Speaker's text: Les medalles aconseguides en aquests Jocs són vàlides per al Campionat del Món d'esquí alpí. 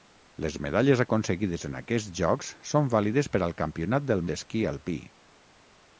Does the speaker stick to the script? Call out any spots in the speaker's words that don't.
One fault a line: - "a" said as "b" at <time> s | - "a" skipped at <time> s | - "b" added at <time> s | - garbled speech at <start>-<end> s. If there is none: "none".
- "Món" skipped at 4.3 s